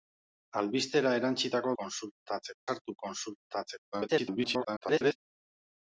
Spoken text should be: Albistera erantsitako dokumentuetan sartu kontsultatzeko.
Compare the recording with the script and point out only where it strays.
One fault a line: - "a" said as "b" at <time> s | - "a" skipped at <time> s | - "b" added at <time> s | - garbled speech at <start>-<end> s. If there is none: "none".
- "dokumentuetan" said as "kontsultatzeko" at 1.8 s
- garbled speech at 3.9-5.2 s